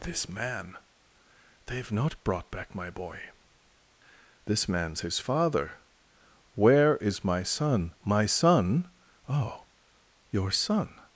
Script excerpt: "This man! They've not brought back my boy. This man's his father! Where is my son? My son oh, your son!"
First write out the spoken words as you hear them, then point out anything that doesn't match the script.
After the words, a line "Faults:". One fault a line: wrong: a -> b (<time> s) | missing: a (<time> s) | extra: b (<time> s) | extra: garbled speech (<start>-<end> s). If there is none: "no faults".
"This man! They've not brought back my boy. This man's his father! Where is my son? My son oh, your son!"
Faults:
no faults